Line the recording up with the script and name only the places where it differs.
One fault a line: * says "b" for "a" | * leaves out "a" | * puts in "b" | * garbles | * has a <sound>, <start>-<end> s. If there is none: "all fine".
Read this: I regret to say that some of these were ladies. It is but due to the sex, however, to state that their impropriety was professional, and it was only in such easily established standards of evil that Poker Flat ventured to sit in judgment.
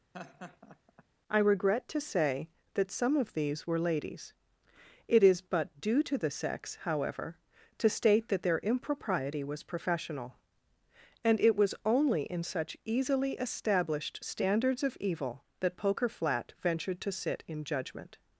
* has a laugh, 0.1-1.0 s